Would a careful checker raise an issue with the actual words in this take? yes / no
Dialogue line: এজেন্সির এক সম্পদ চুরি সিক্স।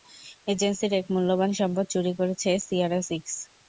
yes